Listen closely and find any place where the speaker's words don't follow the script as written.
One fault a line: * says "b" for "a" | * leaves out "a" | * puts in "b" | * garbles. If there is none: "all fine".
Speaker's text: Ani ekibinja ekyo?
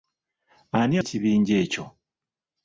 all fine